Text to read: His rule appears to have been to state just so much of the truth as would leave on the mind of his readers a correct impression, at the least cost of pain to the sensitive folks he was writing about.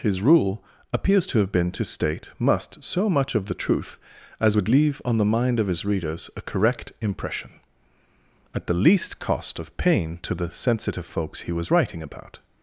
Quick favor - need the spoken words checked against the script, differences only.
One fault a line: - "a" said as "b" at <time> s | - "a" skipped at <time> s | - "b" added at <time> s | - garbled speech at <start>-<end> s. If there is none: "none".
- "just" said as "must" at 2.4 s